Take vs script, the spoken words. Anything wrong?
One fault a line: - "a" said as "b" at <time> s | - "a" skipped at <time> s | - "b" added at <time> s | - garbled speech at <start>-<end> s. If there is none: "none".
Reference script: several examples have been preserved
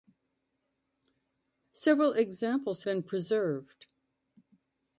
- "have" skipped at 2.9 s